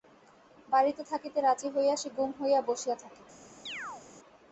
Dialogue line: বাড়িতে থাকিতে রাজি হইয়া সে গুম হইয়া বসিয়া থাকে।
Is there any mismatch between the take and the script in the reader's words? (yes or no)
no